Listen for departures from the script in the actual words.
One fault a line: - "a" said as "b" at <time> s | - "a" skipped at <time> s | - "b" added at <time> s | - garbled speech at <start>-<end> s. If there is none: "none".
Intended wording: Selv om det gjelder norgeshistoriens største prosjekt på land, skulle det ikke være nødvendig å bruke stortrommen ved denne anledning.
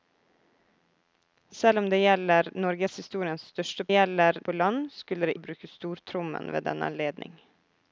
- "prosjekt" said as "gjelder" at 3.9 s
- "ikke være nødvendig" skipped at 5.4 s